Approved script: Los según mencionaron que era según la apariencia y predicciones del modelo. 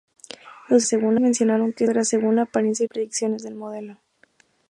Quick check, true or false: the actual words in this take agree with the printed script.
true